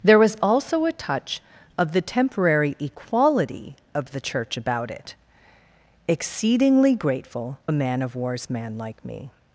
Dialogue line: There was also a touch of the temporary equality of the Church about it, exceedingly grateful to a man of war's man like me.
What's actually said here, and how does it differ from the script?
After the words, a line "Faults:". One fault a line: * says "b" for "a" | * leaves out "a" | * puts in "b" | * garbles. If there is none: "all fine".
There was also a touch of the temporary equality of the Church about it, exceedingly grateful a man of war's man like me.
Faults:
* leaves out "to"